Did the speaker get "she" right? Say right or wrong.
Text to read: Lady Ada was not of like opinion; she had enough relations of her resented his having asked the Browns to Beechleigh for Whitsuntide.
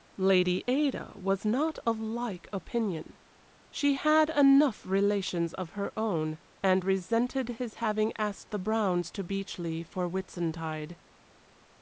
right